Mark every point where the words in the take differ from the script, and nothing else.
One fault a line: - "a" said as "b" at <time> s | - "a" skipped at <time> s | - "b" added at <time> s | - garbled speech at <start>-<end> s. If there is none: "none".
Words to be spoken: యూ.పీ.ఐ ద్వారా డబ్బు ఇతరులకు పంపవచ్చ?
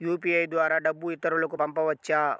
none